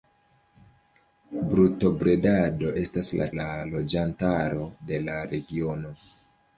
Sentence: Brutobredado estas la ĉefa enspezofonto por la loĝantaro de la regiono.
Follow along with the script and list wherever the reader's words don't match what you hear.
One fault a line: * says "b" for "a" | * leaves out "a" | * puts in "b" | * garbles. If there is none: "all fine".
* leaves out "ĉefa enspezofonto por"